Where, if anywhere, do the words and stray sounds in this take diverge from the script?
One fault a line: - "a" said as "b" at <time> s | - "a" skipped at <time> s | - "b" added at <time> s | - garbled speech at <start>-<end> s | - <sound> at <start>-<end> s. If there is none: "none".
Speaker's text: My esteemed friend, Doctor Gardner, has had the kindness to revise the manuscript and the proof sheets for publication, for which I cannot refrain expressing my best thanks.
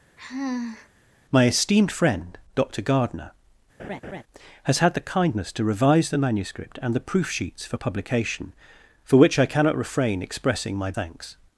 - sigh at 0.2-0.9 s
- laugh at 3.8-4.2 s
- "best" skipped at 10.9 s